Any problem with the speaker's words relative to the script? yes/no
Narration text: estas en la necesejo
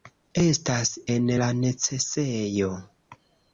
no